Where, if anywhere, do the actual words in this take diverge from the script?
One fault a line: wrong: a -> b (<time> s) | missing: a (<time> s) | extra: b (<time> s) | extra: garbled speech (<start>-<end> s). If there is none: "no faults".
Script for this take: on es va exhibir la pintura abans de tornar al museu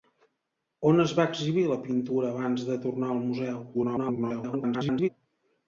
extra: garbled speech (3.7-5.1 s)